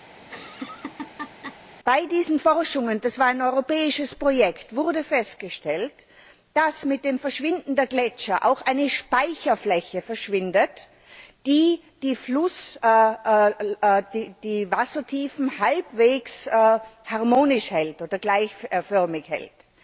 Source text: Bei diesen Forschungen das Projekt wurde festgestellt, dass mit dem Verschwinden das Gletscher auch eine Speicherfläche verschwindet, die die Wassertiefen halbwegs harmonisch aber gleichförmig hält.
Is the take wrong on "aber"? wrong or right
wrong